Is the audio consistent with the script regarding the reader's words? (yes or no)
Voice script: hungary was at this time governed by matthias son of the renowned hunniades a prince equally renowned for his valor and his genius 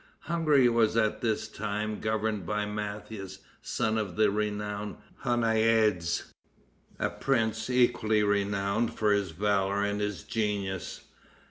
yes